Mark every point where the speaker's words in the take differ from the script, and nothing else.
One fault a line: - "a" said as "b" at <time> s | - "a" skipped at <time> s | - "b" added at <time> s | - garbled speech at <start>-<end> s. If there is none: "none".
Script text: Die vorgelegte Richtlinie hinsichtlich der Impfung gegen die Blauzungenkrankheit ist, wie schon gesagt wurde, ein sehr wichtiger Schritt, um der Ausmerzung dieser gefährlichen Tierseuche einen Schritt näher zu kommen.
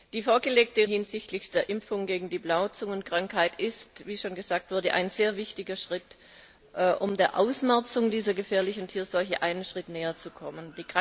- "Richtlinie" skipped at 0.9 s